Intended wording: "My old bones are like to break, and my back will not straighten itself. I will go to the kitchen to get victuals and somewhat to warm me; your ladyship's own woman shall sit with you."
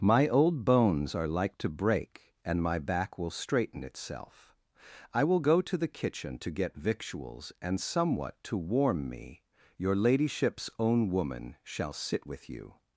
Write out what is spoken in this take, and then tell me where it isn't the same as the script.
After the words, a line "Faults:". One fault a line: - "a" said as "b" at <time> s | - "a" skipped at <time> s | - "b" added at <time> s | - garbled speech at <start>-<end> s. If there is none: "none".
"My old bones are like to break, and my back will straighten itself. I will go to the kitchen to get victuals and somewhat to warm me; your ladyship's own woman shall sit with you."
Faults:
- "not" skipped at 3.3 s